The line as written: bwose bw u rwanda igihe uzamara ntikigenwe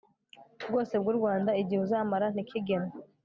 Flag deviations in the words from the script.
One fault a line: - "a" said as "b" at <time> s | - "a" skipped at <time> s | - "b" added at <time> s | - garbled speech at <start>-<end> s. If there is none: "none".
none